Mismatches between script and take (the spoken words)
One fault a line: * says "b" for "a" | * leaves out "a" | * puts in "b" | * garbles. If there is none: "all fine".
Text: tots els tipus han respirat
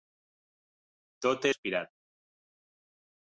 * leaves out "els tipus han"